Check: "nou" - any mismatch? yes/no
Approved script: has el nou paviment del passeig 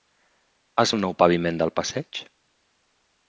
no